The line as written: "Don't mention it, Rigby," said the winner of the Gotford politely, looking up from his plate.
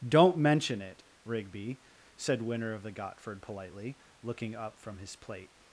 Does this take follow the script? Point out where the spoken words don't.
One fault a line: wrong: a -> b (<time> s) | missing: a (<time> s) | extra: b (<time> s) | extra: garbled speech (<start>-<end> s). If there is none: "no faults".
missing: the (2.4 s)